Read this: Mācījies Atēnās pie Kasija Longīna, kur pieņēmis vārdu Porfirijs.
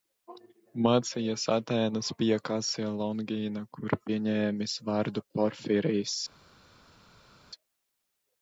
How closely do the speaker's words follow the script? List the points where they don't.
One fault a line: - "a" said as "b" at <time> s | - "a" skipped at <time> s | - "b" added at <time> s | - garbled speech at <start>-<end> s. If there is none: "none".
none